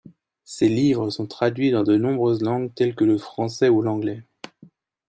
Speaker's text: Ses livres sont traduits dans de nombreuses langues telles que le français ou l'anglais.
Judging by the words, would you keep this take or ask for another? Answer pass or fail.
pass